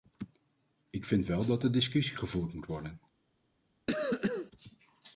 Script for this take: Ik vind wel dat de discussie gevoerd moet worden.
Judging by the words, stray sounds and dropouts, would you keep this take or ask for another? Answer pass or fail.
fail